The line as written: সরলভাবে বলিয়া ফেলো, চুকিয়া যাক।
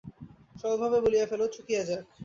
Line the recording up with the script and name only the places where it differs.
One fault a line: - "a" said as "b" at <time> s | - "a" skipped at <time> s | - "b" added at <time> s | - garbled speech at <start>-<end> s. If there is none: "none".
none